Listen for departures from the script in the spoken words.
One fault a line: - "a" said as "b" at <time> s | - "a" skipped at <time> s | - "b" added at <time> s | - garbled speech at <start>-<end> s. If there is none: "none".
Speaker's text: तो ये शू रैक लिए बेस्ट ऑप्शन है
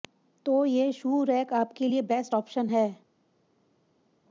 - "आपके" added at 1.5 s